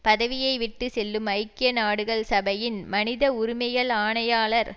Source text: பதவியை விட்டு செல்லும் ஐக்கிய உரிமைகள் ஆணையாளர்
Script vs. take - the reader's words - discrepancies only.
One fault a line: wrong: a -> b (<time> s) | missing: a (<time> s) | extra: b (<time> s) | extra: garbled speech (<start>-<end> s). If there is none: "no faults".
extra: நாடுகள் சபையின் மனித (1.7 s)